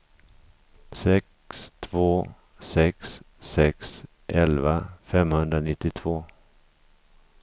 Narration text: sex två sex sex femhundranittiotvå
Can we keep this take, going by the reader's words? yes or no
no